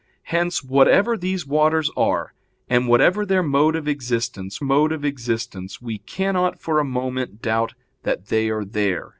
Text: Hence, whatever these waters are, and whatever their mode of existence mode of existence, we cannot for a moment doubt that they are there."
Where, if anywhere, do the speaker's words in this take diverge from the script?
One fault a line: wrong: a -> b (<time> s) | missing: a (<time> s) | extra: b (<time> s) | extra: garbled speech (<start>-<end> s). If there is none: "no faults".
no faults